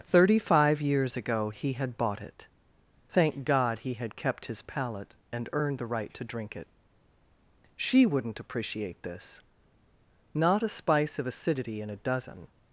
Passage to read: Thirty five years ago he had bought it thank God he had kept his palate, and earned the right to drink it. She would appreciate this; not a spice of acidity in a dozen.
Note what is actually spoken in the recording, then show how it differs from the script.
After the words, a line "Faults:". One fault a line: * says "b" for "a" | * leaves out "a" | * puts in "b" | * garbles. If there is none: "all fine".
Thirty five years ago he had bought it thank God he had kept his palate, and earned the right to drink it. She wouldn't appreciate this; not a spice of acidity in a dozen.
Faults:
* says "wouldn't" for "would"